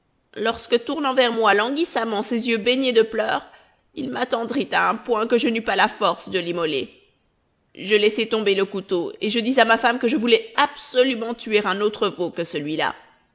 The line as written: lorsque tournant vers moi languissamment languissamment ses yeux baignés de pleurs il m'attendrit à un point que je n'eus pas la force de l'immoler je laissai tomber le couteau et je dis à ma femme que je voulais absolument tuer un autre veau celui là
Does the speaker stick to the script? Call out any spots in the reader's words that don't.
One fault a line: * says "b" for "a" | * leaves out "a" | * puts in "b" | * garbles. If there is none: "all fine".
* leaves out "languissamment"
* puts in "que"